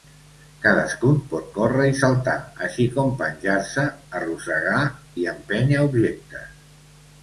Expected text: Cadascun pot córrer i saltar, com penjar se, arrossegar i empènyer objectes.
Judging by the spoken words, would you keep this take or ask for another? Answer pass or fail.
fail